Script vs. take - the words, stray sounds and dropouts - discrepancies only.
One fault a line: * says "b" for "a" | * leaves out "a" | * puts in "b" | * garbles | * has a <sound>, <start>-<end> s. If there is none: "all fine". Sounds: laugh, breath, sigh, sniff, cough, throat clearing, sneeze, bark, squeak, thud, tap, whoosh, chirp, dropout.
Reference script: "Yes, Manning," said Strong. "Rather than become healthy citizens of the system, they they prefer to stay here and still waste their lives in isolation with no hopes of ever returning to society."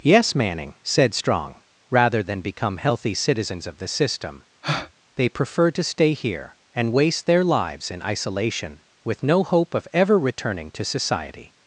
* has a breath, 4.6-4.9 s
* leaves out "they"
* leaves out "still"
* says "hope" for "hopes"